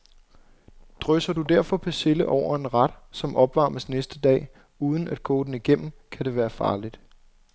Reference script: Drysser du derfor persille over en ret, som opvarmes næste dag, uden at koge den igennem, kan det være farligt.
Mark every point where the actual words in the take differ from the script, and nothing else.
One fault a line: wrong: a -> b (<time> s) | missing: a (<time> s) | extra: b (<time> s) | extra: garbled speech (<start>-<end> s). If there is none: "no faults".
no faults